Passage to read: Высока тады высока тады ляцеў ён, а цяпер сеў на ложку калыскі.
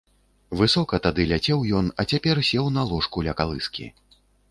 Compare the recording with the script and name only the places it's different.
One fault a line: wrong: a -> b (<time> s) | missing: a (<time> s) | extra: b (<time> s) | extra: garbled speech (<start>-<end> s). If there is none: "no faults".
missing: высока тады (1.3 s)
extra: ля (3.3 s)